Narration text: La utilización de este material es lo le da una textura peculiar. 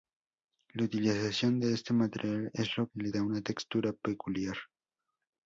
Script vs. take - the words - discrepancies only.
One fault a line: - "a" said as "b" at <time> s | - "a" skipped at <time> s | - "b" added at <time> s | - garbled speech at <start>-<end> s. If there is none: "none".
none